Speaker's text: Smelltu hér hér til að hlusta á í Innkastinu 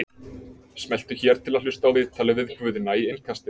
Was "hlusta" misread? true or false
false